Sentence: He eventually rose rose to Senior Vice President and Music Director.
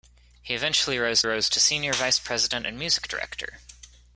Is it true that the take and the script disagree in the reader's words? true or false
false